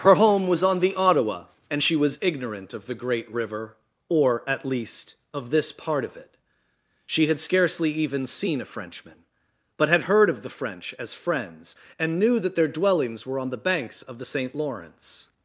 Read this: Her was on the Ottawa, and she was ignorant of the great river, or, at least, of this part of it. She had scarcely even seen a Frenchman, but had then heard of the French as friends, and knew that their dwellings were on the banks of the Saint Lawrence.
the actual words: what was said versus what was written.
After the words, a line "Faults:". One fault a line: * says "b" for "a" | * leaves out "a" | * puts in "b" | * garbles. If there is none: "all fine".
Her home was on the Ottawa, and she was ignorant of the great river, or, at least, of this part of it. She had scarcely even seen a Frenchman, but had heard of the French as friends, and knew that their dwellings were on the banks of the Saint Lawrence.
Faults:
* puts in "home"
* leaves out "then"